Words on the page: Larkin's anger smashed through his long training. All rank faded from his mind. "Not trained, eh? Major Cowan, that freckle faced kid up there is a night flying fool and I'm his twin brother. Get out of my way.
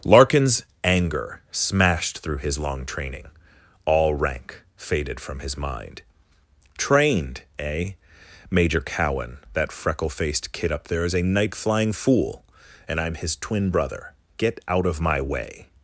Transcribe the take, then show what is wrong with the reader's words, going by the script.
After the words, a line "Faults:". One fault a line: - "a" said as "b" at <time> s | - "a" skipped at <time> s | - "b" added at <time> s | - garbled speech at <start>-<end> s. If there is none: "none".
Larkin's anger smashed through his long training. All rank faded from his mind. "trained, eh? Major Cowan, that freckle faced kid up there is a night flying fool and I'm his twin brother. Get out of my way.
Faults:
- "Not" skipped at 6.0 s